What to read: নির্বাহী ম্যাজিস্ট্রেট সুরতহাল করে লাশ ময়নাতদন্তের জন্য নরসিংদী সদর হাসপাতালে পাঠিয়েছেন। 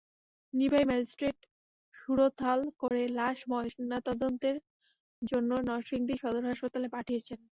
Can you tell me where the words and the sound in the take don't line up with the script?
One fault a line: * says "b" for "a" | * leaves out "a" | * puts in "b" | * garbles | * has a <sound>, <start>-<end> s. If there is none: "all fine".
* has a dropout, 2.9-2.9 s